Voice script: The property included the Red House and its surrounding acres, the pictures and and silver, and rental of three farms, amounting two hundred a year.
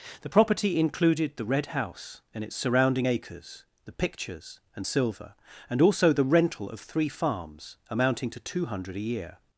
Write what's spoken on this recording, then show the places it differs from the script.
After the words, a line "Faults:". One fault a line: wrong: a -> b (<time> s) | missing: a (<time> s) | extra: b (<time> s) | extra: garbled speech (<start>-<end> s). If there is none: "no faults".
The property included the Red House and its surrounding acres, the pictures and silver, and also the rental of three farms, amounting to two hundred a year.
Faults:
extra: silver (4.8 s)
wrong: silver and -> also the (5.8 s)
extra: to (8.3 s)